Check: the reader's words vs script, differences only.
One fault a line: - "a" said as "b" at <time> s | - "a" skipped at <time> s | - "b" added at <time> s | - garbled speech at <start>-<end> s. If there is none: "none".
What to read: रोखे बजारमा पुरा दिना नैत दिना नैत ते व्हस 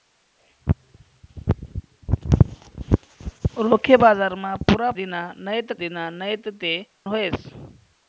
none